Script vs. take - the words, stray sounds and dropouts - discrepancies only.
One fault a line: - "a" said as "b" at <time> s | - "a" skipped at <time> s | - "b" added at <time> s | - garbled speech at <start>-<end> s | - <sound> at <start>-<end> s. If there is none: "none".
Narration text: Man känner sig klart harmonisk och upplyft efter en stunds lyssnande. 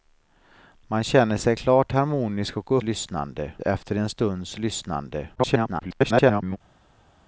- "upplyft" said as "lyssnande" at 2.8 s
- garbled speech at 5.3-6.6 s